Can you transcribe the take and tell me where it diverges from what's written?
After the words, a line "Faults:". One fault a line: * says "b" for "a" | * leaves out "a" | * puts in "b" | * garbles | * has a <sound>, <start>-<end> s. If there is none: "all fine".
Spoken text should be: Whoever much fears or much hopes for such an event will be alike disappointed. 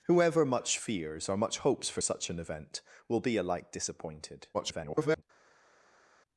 Whoever much fears or much hopes for such an event will be alike disappointed. [garbled]
Faults:
* garbles